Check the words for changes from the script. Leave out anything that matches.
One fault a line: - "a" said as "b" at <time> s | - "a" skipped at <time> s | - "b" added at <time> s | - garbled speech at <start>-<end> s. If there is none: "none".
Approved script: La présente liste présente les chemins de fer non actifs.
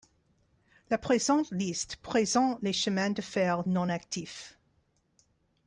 none